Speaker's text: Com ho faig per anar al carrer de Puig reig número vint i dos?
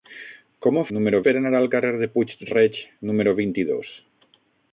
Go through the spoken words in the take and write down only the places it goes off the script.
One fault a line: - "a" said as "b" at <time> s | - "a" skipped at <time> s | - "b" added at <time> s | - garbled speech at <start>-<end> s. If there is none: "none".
- "faig" said as "número" at 1.0 s